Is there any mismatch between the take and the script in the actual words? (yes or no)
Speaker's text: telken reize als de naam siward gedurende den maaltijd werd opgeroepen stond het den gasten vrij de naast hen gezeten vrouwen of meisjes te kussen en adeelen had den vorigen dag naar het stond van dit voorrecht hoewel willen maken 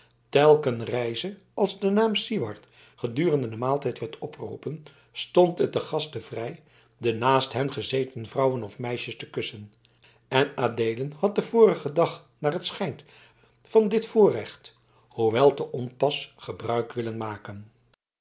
yes